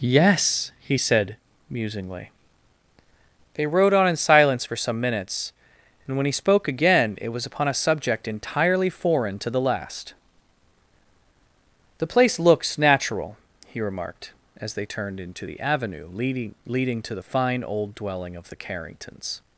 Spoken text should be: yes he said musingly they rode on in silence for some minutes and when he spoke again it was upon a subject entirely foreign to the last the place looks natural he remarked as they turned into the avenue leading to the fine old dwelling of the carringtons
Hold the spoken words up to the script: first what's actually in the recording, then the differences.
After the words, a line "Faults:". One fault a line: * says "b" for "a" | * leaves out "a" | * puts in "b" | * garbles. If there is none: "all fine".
yes he said musingly they rode on in silence for some minutes and when he spoke again it was upon a subject entirely foreign to the last the place looks natural he remarked as they turned into the avenue leading leading to the fine old dwelling of the carringtons
Faults:
* puts in "leading"